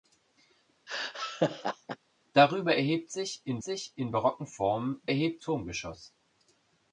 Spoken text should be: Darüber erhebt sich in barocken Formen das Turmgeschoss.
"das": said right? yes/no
no